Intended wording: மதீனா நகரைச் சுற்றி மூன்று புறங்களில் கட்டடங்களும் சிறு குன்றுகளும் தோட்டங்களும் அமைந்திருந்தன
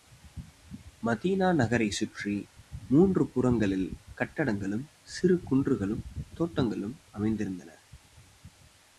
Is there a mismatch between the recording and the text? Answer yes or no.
no